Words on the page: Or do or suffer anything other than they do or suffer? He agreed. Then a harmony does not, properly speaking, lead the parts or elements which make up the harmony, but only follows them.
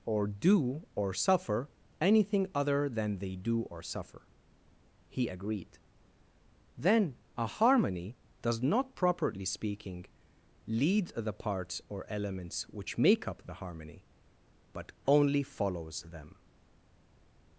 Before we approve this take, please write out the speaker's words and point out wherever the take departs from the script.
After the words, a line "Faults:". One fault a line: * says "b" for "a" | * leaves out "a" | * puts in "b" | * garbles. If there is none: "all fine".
Or do or suffer anything other than they do or suffer? He agreed. Then a harmony does not, properly speaking, lead the parts or elements which make up the harmony, but only follows them.
Faults:
all fine